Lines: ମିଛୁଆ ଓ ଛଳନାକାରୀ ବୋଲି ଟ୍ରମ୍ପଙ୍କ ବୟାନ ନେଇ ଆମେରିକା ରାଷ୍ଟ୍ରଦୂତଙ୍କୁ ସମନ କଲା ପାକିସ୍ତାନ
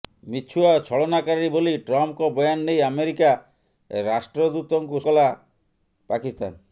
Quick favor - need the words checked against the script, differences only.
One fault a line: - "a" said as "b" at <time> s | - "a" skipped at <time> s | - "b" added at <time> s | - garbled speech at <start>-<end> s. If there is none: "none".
- "ସମନ" skipped at 5.0 s